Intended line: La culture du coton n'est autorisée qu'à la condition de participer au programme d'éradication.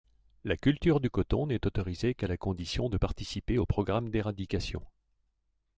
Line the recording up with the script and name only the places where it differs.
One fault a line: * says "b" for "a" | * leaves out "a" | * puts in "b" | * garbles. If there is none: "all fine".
all fine